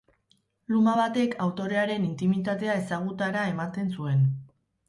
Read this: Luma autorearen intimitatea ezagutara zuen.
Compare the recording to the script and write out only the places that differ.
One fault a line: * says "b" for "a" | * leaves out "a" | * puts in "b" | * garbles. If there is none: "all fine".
* puts in "batek"
* puts in "ematen"